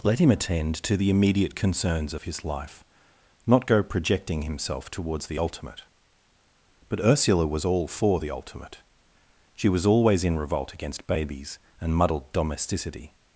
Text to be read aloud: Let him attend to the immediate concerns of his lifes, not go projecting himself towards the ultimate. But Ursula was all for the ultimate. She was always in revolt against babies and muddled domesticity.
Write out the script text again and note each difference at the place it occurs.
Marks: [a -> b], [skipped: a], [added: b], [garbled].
Let him attend to the immediate concerns of his [lifes, -> life] not go projecting himself towards the ultimate. But Ursula was all for the ultimate. She was always in revolt against babies and muddled domesticity.